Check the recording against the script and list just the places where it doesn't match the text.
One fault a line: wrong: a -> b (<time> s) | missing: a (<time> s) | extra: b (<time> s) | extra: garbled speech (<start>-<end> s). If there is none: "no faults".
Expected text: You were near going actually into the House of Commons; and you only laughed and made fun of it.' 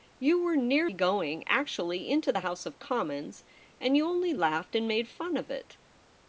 no faults